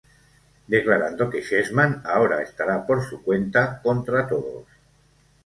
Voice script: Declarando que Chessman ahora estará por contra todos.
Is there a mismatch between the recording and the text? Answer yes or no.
yes